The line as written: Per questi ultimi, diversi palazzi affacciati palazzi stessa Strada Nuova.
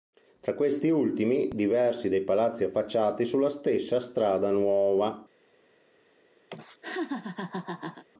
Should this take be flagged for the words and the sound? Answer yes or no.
yes